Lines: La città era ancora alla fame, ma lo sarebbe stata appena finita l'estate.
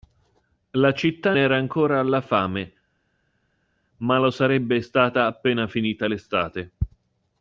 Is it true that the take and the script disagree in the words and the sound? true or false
false